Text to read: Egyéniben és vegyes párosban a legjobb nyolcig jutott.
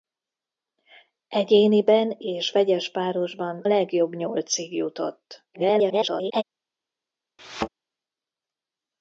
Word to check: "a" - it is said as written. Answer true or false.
false